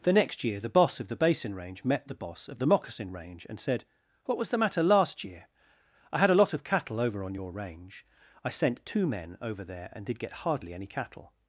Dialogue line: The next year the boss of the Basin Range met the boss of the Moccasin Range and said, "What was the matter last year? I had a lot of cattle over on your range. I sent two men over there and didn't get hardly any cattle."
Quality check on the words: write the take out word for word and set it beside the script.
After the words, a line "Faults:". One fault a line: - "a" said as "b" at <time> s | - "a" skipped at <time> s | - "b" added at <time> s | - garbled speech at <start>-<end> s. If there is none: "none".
The next year the boss of the Basin Range met the boss of the Moccasin Range and said, "What was the matter last year? I had a lot of cattle over on your range. I sent two men over there and did get hardly any cattle."
Faults:
- "didn't" said as "did" at 10.1 s